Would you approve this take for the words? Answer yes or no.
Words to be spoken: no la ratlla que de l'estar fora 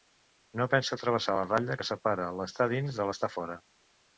no